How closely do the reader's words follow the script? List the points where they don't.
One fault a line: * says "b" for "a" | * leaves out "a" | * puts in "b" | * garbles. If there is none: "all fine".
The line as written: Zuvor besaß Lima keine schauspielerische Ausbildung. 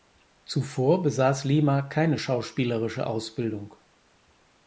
all fine